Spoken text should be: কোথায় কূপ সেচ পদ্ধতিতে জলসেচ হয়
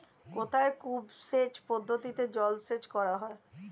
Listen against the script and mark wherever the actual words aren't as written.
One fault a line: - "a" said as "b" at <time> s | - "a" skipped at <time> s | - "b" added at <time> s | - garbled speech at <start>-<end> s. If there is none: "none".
- "করা" added at 3.0 s